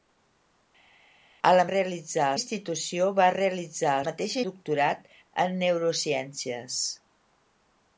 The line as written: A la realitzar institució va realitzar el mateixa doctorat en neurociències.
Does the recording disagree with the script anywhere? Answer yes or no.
no